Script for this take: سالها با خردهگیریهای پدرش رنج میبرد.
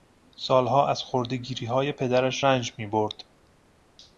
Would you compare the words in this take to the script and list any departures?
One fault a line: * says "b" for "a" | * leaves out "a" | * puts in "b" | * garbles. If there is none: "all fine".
* says "از" for "با"